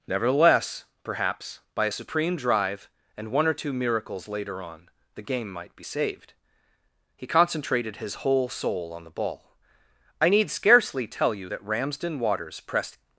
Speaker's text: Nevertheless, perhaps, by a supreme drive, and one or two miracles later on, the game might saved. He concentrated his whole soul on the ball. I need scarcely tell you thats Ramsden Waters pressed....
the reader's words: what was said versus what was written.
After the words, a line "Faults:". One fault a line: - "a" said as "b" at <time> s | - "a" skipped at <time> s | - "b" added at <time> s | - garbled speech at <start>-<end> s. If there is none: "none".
Nevertheless, perhaps, by a supreme drive, and one or two miracles later on, the game might be saved. He concentrated his whole soul on the ball. I need scarcely tell you that Ramsden Waters pressed....
Faults:
- "be" added at 5.7 s
- "thats" said as "that" at 11.5 s